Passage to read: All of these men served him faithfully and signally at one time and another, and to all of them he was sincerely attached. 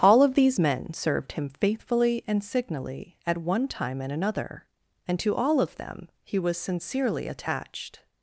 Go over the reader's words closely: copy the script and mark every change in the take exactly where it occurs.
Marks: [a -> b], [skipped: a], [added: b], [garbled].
All of these men served him faithfully and signally at one time and another, and to all of them he was sincerely attached.